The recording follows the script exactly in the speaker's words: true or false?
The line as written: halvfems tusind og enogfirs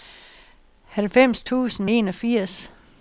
false